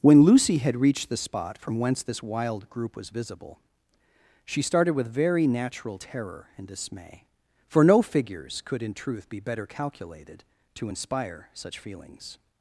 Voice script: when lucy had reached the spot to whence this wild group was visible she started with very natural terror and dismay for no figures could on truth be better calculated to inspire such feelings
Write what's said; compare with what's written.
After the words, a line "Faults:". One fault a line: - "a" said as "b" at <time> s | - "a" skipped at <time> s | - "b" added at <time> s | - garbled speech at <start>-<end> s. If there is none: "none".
when lucy had reached the spot from whence this wild group was visible she started with very natural terror and dismay for no figures could in truth be better calculated to inspire such feelings
Faults:
- "to" said as "from" at 1.6 s
- "on" said as "in" at 8.8 s